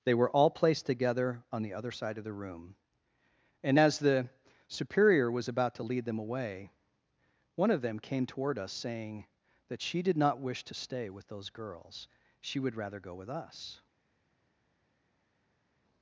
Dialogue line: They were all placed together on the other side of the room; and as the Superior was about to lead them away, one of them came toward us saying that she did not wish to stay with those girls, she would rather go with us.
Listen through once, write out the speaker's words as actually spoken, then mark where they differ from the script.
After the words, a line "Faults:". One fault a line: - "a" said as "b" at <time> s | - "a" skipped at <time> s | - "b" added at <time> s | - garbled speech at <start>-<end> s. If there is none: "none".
They were all placed together on the other side of the room; and as the Superior was about to lead them away, one of them came toward us saying that she did not wish to stay with those girls, she would rather go with us.
Faults:
none